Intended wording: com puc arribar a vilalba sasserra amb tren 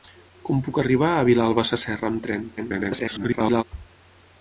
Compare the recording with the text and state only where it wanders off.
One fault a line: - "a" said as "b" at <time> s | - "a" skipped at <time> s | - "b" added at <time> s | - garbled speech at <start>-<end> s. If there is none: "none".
- garbled speech at 2.6-3.6 s